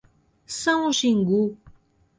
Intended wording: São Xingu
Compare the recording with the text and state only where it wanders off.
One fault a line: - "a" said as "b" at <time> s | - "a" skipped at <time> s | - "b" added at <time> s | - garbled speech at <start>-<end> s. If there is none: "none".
none